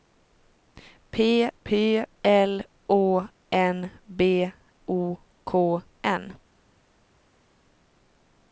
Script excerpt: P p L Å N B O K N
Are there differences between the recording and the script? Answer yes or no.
no